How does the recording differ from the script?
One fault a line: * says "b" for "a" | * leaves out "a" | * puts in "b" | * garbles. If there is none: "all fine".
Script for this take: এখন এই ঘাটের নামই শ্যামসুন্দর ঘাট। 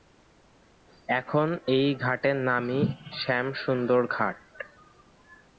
all fine